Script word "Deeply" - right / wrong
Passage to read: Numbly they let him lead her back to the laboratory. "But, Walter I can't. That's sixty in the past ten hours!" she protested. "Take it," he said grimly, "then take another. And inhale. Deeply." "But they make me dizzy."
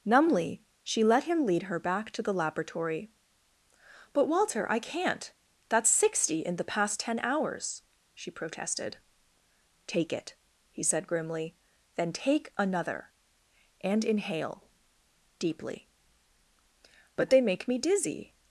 right